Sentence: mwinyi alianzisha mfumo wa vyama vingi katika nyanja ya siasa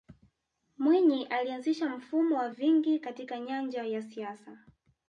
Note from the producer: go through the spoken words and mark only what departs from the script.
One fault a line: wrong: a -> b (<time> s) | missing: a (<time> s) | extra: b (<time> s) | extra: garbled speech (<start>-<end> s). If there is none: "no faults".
missing: vyama (2.5 s)